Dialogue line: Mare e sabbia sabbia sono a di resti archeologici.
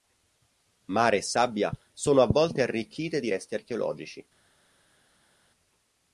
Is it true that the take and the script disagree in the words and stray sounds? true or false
true